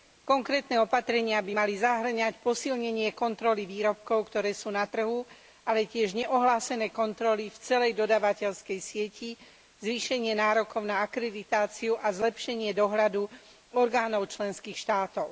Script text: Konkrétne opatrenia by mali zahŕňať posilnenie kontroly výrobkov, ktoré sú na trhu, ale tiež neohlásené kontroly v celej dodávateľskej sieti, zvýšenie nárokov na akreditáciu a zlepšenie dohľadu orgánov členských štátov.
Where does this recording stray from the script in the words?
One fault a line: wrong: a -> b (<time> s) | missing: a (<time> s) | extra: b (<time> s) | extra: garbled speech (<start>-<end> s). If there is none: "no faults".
no faults